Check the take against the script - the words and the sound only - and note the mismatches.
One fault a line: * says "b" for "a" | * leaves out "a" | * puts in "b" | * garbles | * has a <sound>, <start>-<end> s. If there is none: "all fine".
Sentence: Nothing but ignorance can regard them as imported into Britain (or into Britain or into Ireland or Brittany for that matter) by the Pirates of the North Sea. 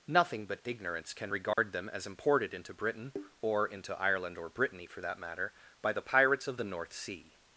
* has a dropout, 1.5-1.6 s
* leaves out "Britain or into"